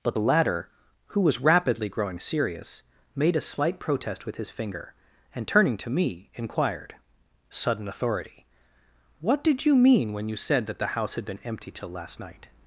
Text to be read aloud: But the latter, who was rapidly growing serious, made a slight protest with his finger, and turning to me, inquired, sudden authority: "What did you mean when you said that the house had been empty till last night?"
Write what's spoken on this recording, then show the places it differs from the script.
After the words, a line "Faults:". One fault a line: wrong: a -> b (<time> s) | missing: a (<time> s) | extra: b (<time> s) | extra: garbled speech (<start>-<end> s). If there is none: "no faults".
But the latter, who was rapidly growing serious, made a slight protest with his finger, and turning to me, inquired, sudden authority: "What did you mean when you said that the house had been empty till last night?"
Faults:
no faults